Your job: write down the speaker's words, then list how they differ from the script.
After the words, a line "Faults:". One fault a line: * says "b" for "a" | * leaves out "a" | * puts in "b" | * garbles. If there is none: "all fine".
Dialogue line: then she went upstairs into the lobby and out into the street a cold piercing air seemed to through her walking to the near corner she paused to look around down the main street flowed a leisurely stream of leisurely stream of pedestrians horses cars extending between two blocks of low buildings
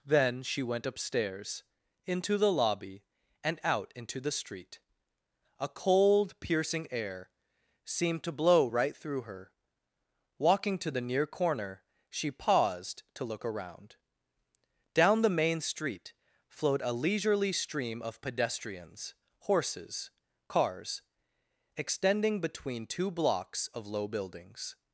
then she went upstairs into the lobby and out into the street a cold piercing air seemed to blow right through her walking to the near corner she paused to look around down the main street flowed a leisurely stream of pedestrians horses cars extending between two blocks of low buildings
Faults:
* puts in "blow right"
* leaves out "leisurely stream of"